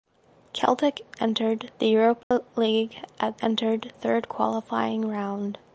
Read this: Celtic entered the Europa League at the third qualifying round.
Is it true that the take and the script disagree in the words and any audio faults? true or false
true